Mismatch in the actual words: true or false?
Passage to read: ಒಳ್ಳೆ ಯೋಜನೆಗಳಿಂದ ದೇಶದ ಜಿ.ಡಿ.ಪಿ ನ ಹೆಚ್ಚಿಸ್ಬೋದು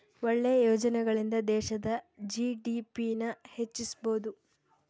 false